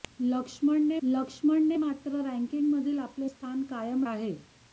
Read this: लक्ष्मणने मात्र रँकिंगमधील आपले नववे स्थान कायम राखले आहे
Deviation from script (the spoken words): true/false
true